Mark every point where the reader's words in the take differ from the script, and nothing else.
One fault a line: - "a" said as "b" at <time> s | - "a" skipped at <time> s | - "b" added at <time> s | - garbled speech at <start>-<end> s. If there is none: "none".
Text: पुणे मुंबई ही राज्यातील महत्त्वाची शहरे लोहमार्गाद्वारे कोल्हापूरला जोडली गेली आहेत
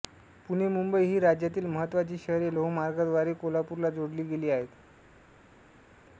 none